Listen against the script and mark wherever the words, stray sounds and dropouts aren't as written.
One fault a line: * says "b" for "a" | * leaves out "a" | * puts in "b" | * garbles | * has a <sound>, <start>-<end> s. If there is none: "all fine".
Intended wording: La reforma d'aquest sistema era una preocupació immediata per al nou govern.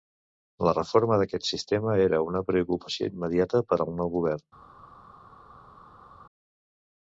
all fine